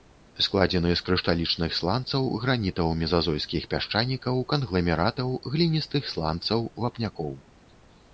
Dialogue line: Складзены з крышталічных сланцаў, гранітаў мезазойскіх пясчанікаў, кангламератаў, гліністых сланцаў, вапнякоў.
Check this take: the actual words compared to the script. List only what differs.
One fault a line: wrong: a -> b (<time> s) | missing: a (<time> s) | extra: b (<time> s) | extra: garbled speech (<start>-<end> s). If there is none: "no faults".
no faults